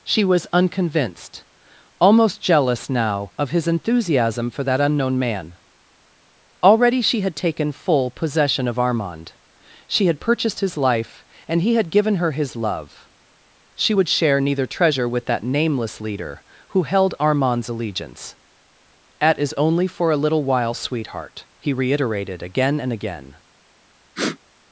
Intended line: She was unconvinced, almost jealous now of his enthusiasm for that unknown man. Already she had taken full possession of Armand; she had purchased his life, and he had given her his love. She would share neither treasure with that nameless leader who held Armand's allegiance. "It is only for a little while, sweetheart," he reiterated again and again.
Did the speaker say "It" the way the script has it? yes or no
no